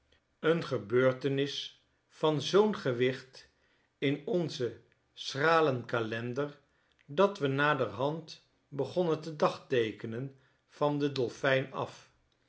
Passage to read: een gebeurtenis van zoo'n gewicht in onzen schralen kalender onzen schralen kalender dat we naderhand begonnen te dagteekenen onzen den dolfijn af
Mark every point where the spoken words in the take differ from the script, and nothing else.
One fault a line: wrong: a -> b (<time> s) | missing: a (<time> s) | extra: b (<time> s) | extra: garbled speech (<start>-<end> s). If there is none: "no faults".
missing: onzen schralen kalender (6.6 s)
wrong: onzen -> van (10.7 s)